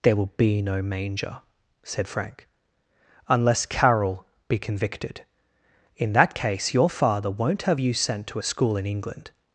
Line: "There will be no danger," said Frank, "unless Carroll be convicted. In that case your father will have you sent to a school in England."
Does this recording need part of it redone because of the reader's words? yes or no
yes